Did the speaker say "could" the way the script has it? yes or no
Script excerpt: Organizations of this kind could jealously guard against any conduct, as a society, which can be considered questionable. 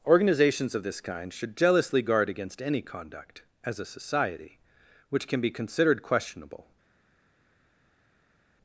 no